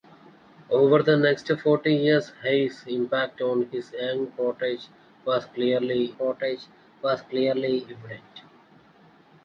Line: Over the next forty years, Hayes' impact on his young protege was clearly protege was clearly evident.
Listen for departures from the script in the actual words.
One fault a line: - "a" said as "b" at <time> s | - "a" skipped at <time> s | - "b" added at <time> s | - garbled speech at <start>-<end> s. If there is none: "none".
none